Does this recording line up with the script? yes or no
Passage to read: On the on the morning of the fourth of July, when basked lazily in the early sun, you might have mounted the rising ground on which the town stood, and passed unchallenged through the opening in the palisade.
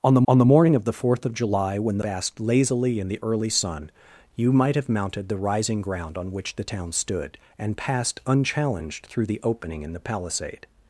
yes